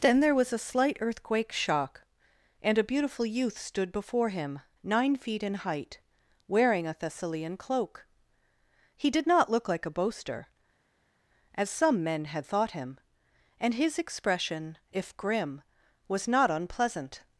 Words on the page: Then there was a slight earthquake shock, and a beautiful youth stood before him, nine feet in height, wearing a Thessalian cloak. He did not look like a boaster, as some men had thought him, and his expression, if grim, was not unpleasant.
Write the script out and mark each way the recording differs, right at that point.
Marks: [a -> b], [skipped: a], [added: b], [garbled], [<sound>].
Then there was a slight earthquake shock, and a beautiful youth stood before him, nine feet in height, wearing a Thessalian cloak. He did not look like a boaster, as some men had thought him, and his expression, if grim, was not unpleasant.